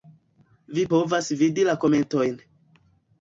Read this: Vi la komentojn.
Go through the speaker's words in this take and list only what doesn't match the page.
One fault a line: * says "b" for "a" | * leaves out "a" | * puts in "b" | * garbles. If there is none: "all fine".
* puts in "povas vidi"